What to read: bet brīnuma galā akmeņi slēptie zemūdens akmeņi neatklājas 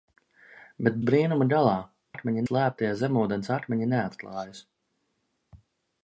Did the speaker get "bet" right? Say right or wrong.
right